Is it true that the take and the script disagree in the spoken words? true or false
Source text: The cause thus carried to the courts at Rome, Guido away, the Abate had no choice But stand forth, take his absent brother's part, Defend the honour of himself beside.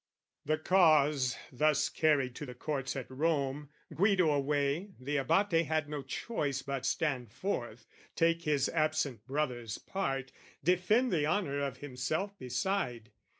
false